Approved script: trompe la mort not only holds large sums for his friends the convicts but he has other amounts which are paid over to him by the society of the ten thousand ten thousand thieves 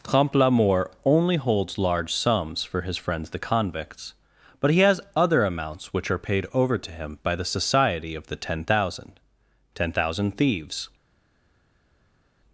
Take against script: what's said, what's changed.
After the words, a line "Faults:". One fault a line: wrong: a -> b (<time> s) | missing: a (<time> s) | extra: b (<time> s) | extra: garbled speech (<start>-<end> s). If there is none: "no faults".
trompe la mort only holds large sums for his friends the convicts but he has other amounts which are paid over to him by the society of the ten thousand ten thousand thieves
Faults:
missing: not (0.9 s)